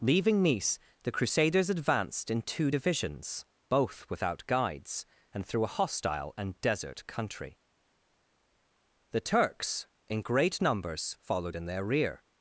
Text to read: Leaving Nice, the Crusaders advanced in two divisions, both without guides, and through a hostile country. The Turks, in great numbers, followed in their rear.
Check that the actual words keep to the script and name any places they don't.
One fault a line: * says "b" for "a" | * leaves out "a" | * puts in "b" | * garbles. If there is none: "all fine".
* puts in "and desert"